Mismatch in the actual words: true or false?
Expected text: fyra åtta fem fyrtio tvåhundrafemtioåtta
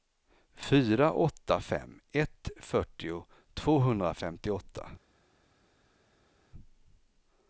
true